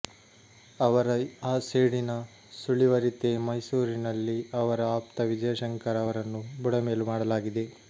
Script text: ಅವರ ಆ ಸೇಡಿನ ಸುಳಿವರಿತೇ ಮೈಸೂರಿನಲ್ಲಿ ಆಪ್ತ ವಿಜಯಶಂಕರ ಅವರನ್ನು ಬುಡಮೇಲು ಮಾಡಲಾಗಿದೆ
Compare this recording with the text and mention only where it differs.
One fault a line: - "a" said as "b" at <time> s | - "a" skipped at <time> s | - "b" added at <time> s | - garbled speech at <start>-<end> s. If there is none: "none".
- "ಅವರ" added at 4.6 s